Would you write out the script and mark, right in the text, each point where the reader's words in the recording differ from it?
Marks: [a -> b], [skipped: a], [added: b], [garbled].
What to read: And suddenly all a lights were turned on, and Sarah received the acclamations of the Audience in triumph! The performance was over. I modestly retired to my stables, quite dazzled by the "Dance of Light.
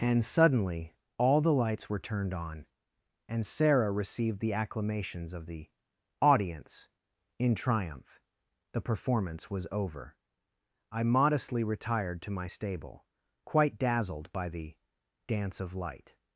And suddenly all [a -> the] lights were turned on, and Sarah received the acclamations of the Audience in triumph! The performance was over. I modestly retired to my [stables, -> stable] quite dazzled by the "Dance of Light.